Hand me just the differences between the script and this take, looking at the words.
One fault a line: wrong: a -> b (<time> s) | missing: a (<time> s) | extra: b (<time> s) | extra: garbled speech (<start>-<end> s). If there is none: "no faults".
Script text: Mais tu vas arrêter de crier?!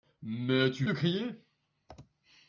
missing: vas arrêter (0.9 s)